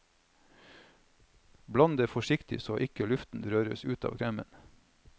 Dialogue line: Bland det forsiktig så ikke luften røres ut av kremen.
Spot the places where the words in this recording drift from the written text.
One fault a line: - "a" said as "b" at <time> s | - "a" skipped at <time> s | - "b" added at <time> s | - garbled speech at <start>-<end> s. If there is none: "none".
none